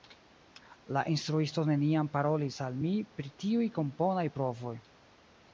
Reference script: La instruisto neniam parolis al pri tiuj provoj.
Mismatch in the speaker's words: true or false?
true